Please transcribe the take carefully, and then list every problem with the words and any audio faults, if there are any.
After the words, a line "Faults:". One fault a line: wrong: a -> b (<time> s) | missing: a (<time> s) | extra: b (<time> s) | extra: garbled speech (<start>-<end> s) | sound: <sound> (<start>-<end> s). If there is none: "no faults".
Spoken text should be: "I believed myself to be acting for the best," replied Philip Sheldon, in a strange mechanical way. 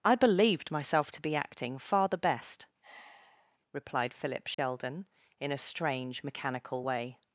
"I believed myself to be acting far the best," replied Philip Sheldon, in a strange mechanical way.
Faults:
wrong: for -> far (1.8 s)
sound: sigh (2.8-3.6 s)
sound: dropout (4.5-4.6 s)